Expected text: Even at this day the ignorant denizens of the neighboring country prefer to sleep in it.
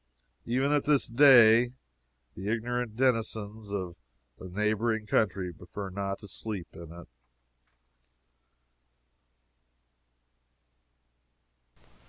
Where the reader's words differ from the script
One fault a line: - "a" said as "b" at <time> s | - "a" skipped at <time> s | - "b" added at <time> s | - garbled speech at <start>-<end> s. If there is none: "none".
- "not" added at 5.9 s